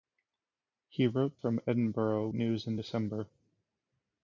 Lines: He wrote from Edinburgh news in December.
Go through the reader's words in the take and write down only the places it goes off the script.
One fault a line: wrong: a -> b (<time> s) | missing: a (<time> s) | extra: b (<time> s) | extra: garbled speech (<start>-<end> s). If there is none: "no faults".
no faults